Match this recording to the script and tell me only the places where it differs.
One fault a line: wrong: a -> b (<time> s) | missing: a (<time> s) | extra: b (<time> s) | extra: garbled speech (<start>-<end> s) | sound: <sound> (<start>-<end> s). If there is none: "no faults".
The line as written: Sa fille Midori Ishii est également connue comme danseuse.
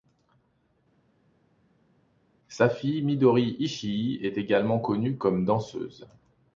no faults